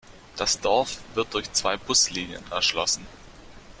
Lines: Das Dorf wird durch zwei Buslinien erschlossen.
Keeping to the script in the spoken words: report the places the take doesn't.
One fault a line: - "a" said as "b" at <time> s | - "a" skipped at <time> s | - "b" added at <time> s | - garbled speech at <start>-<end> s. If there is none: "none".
none